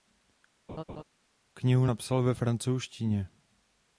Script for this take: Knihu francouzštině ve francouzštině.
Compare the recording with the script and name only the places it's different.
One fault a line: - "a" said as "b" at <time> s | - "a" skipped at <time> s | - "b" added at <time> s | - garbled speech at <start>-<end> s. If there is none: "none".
- "francouzštině" said as "napsal" at 1.8 s